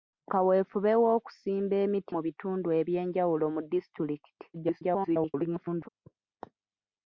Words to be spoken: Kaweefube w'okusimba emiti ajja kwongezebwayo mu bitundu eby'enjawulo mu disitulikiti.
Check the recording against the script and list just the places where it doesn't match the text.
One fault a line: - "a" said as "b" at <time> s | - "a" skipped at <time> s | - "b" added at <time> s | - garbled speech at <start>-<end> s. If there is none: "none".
- "ajja kwongezebwayo" skipped at 2.1 s
- garbled speech at 4.5-5.9 s